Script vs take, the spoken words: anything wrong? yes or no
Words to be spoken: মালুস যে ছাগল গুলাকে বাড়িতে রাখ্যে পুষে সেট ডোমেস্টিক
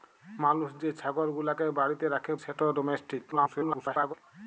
yes